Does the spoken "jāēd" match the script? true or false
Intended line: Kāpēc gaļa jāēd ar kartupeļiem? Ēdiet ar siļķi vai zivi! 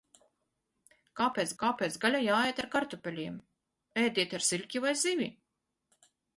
true